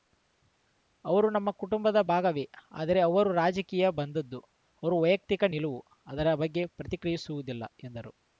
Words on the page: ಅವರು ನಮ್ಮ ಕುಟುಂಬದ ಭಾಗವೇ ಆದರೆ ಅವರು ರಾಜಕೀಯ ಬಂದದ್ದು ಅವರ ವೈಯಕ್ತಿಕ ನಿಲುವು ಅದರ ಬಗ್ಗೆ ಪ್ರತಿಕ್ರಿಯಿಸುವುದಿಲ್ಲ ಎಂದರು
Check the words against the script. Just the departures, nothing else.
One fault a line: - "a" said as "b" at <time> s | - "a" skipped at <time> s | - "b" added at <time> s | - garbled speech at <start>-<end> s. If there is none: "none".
none